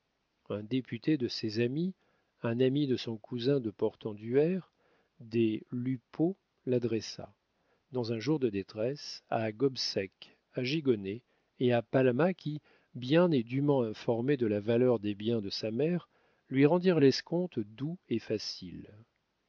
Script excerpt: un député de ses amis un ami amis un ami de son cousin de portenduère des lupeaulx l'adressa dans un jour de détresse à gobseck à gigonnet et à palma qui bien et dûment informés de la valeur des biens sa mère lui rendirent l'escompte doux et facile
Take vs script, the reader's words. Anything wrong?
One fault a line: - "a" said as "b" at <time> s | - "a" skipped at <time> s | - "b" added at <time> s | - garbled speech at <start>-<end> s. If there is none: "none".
- "amis un ami" skipped at 2.9 s
- "de" added at 15.4 s